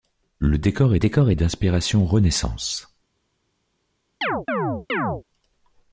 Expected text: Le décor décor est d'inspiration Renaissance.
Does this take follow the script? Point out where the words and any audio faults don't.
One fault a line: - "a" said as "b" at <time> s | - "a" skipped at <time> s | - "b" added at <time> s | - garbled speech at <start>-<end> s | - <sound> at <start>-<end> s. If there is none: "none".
- chirp at 4.2-5.2 s